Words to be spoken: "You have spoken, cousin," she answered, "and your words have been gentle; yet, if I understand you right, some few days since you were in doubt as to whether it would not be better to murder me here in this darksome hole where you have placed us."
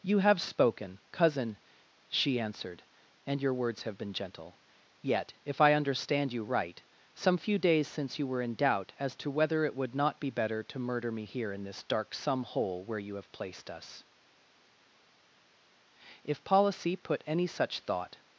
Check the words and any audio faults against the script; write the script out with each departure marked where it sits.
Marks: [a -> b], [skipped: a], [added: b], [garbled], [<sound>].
"You have spoken, cousin," she answered, "and your words have been gentle; yet, if I understand you right, some few days since you were in doubt as to whether it would not be better to murder me here in this darksome hole where you have placed us." [added: If policy put any such thought]